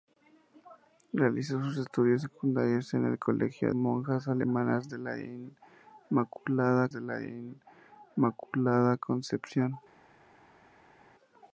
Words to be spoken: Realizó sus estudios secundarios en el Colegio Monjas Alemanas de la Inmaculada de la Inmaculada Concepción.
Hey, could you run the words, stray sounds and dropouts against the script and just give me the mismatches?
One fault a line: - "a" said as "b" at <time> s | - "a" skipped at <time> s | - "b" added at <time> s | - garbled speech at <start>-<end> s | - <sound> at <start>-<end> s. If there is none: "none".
none